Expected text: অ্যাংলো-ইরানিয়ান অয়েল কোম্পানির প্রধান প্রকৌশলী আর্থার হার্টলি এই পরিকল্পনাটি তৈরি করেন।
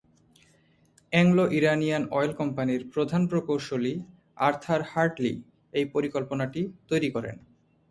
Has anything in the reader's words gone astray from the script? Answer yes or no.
no